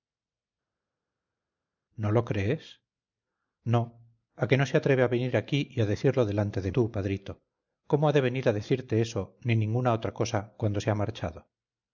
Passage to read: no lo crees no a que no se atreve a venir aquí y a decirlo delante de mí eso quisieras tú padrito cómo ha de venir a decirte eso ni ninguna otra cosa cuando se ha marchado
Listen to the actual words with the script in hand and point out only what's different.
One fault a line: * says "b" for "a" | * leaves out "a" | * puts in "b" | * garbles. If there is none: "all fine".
* leaves out "mí eso quisieras"